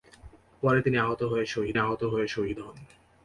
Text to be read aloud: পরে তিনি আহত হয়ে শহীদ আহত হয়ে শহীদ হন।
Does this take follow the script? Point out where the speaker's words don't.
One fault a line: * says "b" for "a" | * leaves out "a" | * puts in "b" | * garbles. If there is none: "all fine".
all fine